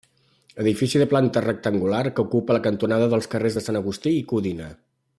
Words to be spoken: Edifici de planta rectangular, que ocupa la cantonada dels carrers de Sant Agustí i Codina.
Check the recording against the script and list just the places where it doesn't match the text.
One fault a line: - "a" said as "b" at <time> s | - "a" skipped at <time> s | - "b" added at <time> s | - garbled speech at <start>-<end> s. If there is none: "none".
none